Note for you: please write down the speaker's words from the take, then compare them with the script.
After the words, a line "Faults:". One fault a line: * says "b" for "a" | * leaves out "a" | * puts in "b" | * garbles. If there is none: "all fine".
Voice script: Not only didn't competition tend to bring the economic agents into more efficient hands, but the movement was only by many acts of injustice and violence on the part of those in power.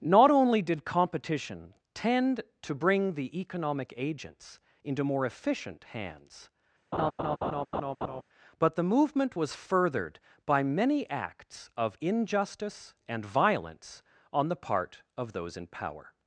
Not only did competition tend to bring the economic agents into more efficient hands, but the movement was furthered by many acts of injustice and violence on the part of those in power.
Faults:
* says "did" for "didn't"
* says "furthered" for "only"